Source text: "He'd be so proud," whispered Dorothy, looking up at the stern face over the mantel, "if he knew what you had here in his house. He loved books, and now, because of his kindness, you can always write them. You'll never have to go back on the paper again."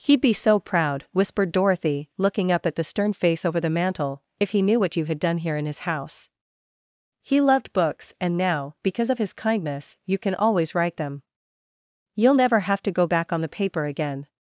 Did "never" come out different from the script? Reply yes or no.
no